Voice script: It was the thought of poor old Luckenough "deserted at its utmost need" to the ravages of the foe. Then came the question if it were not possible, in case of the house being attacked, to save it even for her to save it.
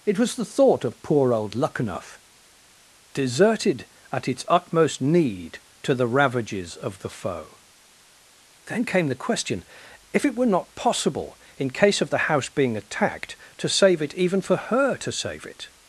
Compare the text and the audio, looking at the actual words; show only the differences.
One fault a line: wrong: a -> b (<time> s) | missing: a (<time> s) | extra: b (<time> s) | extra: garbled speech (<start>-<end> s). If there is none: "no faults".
no faults